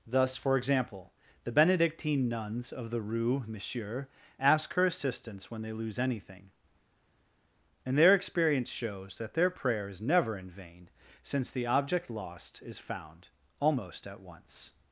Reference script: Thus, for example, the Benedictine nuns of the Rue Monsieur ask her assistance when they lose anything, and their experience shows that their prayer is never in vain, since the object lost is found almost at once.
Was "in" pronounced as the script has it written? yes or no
yes